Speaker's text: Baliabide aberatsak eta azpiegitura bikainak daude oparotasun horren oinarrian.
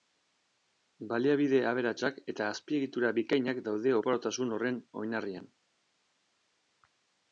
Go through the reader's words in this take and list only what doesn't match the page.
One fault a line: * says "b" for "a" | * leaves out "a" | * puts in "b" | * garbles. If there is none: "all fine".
all fine